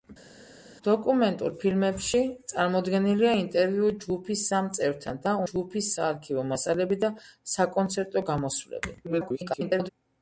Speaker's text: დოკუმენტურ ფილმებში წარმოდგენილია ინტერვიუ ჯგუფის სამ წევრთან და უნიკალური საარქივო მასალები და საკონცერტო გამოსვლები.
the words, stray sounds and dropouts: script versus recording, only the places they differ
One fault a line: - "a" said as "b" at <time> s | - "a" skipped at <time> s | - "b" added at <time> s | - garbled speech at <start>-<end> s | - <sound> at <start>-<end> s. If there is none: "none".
- "უნიკალური" said as "ჯგუფის" at 5.5 s
- garbled speech at 9.0-9.9 s